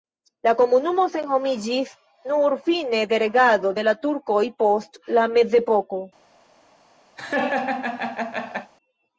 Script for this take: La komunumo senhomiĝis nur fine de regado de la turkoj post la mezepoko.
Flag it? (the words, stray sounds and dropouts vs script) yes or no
yes